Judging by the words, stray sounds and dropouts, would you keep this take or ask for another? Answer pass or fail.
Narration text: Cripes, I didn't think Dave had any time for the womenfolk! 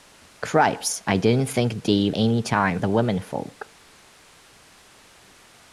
fail